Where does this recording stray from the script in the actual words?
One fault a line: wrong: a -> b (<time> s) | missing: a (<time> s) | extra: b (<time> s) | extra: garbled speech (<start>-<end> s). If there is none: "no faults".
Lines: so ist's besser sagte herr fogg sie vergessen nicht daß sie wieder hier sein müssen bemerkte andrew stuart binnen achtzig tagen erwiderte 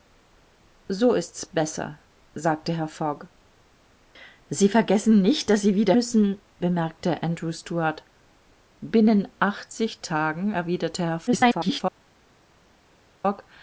missing: hier sein (5.9 s)
extra: garbled speech (11.3-11.8 s)